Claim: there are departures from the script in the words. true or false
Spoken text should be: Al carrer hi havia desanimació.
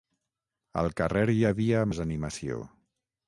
false